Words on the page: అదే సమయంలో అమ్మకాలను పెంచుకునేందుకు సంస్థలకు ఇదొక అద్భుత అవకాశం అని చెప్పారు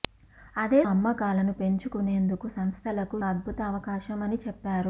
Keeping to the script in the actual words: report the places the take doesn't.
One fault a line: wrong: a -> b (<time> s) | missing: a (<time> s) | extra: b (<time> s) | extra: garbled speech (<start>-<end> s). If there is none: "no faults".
missing: సమయంలో (0.8 s)
missing: ఇదొక (3.2 s)